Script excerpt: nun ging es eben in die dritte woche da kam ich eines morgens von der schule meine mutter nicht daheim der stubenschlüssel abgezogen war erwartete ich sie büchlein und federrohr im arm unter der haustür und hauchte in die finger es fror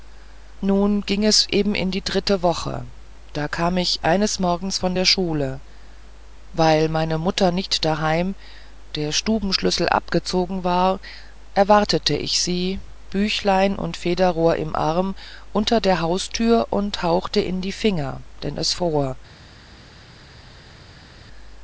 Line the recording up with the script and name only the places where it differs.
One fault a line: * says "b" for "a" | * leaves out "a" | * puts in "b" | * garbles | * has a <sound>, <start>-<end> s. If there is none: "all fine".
* puts in "weil"
* puts in "denn"